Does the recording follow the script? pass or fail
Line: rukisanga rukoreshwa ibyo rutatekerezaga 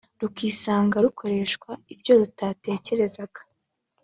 pass